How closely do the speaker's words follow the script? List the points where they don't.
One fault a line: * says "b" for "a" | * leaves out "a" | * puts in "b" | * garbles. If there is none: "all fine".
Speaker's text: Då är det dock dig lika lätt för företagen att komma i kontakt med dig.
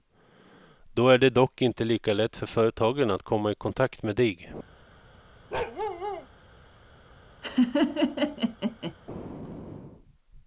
* says "inte" for "dig"